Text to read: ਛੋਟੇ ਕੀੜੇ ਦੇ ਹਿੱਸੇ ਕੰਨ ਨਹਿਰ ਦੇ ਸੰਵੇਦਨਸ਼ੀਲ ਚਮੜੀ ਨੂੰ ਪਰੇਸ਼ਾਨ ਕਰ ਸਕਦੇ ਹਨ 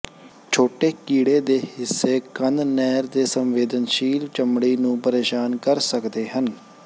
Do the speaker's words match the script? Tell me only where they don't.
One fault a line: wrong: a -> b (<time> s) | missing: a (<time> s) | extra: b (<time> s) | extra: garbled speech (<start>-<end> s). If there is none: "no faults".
no faults